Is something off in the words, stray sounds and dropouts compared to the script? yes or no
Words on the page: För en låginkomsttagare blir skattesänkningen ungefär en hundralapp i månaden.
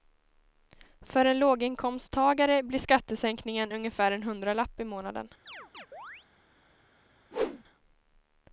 yes